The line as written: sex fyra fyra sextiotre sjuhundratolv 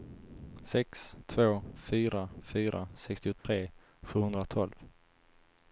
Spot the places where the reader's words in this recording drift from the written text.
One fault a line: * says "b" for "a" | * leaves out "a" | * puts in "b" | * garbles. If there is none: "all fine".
* puts in "två"